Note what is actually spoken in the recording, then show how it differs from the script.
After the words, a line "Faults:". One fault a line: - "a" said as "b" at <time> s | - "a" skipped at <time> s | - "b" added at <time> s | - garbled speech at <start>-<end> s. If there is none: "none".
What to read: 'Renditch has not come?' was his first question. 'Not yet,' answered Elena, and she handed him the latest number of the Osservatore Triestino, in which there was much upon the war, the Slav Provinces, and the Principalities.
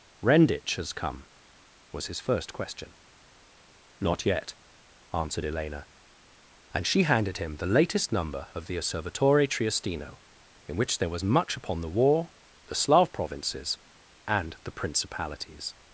'Renditch has come?' was his first question. 'Not yet,' answered Elena, and she handed him the latest number of the Osservatore Triestino, in which there was much upon the war, the Slav Provinces, and the Principalities.
Faults:
- "not" skipped at 0.9 s